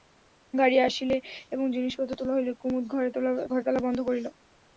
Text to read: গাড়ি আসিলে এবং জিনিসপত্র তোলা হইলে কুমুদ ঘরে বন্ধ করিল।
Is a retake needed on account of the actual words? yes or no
yes